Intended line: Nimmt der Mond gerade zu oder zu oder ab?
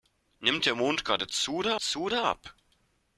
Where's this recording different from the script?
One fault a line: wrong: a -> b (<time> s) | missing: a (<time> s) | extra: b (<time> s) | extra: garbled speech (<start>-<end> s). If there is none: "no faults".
no faults